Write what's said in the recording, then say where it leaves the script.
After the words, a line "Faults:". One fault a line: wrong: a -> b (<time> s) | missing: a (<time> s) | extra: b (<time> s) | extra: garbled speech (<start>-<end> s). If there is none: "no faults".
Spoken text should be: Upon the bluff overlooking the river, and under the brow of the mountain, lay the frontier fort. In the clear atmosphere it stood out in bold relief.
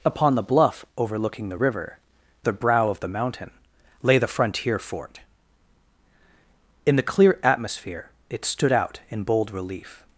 Upon the bluff overlooking the river, the brow of the mountain, lay the frontier fort. In the clear atmosphere it stood out in bold relief.
Faults:
missing: and under (2.0 s)